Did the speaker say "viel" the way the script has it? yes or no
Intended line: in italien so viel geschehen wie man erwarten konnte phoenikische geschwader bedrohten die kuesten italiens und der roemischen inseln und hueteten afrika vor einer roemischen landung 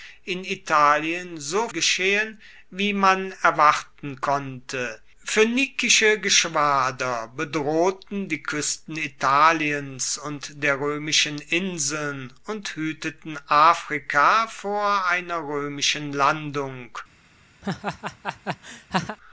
no